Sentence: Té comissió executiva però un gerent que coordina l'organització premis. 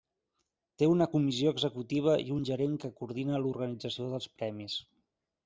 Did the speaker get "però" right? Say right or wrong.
wrong